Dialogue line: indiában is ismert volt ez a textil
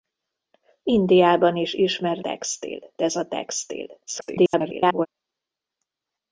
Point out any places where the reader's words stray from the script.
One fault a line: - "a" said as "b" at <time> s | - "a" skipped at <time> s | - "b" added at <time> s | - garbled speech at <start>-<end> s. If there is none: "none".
- "volt" said as "textil" at 2.2 s
- garbled speech at 4.1-5.1 s